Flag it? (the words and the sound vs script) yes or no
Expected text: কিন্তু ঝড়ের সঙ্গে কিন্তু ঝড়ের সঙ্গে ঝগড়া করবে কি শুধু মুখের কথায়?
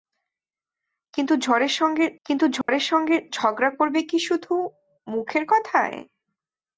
yes